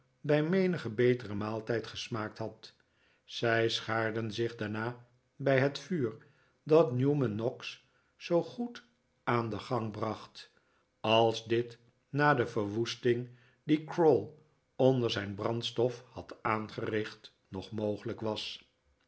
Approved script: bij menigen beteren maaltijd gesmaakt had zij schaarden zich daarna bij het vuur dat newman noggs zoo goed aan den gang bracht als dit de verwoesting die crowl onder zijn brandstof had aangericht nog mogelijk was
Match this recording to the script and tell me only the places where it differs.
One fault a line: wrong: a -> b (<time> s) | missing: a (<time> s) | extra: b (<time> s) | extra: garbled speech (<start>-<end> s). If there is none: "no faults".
extra: na (12.1 s)